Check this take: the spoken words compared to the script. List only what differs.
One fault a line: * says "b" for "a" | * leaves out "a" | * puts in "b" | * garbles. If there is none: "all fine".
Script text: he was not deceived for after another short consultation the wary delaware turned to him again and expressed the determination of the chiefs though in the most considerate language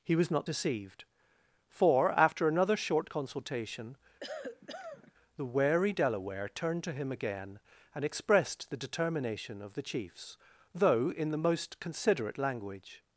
all fine